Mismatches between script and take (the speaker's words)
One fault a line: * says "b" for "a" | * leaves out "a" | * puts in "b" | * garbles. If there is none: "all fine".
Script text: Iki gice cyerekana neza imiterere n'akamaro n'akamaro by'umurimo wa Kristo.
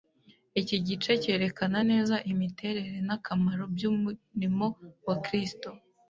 * leaves out "n'akamaro"